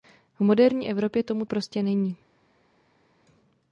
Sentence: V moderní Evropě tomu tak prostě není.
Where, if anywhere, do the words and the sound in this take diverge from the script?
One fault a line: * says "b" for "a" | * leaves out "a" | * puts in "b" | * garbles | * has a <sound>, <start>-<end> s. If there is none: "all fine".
* leaves out "tak"